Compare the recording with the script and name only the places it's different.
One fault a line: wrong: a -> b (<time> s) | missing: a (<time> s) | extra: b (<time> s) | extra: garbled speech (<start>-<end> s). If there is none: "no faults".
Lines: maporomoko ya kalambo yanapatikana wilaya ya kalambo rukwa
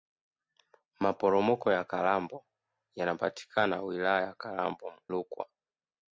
no faults